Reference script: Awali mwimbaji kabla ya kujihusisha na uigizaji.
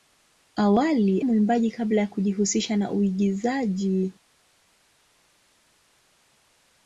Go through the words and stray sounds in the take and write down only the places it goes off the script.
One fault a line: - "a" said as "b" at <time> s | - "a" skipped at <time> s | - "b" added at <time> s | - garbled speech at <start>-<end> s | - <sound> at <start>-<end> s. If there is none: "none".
none